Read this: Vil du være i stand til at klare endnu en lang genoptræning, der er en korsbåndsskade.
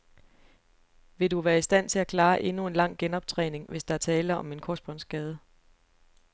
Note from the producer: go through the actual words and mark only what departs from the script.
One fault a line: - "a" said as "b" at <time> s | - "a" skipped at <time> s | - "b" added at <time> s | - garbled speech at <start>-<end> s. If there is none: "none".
- "hvis" added at 3.7 s
- "tale om" added at 4.0 s